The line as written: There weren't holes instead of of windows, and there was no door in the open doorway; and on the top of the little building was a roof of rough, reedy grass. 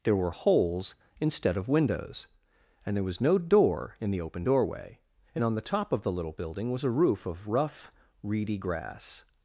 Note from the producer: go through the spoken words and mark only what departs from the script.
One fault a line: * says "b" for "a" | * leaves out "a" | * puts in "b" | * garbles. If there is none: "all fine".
* says "were" for "weren't"
* leaves out "of"